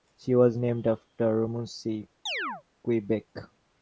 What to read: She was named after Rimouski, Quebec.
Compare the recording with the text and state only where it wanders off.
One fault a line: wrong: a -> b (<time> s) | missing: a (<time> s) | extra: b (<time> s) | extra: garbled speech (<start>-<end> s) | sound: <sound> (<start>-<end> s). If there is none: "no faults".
sound: chirp (2.3-2.6 s)